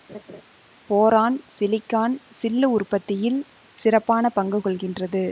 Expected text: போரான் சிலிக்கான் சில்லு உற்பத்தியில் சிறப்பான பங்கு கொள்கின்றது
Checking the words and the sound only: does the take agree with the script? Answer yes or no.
no